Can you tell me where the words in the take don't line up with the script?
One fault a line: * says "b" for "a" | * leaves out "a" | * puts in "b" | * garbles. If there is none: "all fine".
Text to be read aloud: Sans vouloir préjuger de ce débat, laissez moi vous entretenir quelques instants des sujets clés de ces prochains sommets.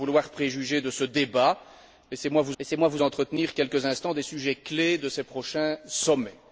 * puts in "laissez moi vous"